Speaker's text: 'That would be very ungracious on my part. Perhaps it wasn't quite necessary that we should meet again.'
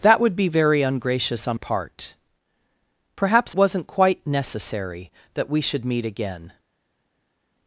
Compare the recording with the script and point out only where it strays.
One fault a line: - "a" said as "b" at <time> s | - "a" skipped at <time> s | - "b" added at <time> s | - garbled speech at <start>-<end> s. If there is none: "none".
- "my" skipped at 1.6 s
- "it" skipped at 3.5 s